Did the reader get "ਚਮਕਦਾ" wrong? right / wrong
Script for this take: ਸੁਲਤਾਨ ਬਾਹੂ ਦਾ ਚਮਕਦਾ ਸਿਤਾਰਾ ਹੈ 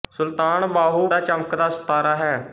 right